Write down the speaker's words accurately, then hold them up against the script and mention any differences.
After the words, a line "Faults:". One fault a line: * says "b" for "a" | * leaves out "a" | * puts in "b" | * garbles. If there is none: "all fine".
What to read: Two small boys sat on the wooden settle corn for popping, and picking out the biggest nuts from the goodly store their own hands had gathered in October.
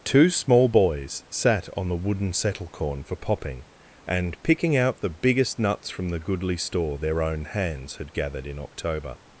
Two small boys sat on the wooden settle corn for popping, and picking out the biggest nuts from the goodly store their own hands had gathered in October.
Faults:
all fine